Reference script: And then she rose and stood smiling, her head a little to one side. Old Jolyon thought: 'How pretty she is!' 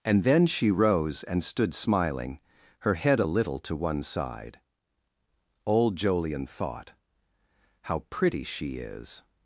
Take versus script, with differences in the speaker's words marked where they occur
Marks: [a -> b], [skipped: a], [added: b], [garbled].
And then she rose and stood smiling, her head a little to one side. Old Jolyon thought: 'How pretty she is!'